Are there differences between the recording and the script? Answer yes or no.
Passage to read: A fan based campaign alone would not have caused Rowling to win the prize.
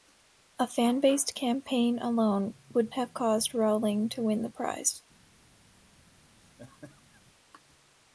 yes